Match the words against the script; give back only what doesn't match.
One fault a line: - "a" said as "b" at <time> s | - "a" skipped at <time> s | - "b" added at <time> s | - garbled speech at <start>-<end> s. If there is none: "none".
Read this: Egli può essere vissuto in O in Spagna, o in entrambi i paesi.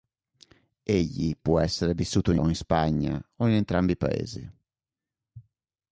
none